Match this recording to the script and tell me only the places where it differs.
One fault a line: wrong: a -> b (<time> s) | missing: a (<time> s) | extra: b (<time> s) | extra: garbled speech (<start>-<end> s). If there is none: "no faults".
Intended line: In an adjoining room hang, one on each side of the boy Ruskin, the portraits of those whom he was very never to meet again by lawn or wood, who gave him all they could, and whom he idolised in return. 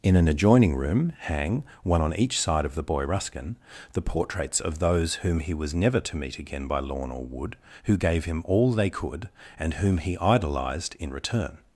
missing: very (5.8 s)